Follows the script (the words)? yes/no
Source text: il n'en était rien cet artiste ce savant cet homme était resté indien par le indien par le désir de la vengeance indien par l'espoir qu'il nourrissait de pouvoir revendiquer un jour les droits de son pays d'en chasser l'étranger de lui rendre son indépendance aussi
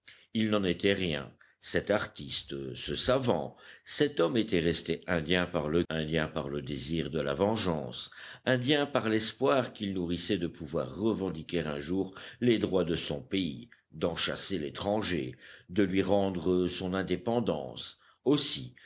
yes